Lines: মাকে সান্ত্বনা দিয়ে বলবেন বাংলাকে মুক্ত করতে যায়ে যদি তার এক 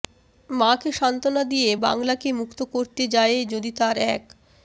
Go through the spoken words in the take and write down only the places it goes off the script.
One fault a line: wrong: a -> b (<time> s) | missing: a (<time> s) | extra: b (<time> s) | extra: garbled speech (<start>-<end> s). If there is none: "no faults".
missing: বলবেন (1.7 s)